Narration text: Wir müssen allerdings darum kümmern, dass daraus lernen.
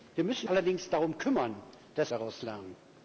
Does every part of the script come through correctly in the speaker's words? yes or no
yes